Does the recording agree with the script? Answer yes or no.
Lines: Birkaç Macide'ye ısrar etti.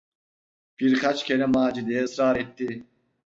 no